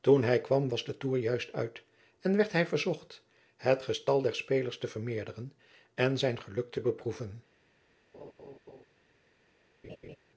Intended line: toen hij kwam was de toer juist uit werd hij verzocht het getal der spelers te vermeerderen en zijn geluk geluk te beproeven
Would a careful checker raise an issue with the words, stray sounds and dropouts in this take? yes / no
yes